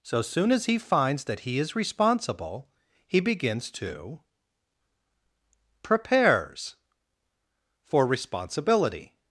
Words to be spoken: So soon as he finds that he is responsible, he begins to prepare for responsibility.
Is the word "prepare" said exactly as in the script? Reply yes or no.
no